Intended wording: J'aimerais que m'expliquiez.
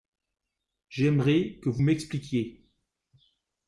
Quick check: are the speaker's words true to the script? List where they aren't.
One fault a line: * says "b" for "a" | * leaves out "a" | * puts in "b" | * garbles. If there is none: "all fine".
* puts in "vous"